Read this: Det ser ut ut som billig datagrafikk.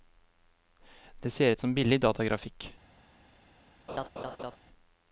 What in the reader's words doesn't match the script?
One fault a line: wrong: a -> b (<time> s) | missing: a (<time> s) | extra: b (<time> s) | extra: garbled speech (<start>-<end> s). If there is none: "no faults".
missing: ut (1.6 s)